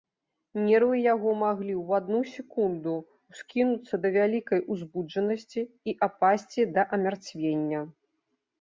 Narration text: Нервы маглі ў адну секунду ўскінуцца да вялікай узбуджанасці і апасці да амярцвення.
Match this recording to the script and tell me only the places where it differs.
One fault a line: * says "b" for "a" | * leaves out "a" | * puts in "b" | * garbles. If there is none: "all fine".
* puts in "яго"